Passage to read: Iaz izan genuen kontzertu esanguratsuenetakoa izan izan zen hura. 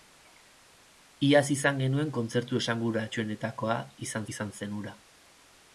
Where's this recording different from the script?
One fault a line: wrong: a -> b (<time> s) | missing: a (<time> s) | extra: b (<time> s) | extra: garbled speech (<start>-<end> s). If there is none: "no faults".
no faults